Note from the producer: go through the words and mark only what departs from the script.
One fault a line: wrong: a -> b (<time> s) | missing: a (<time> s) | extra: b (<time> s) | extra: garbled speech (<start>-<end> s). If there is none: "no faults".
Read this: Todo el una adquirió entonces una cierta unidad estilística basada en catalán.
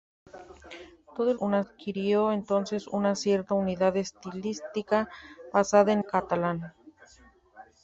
no faults